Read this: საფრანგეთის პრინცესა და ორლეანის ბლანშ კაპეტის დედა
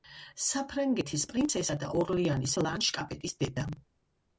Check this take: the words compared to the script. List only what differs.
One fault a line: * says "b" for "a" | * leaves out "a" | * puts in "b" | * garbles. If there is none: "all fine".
all fine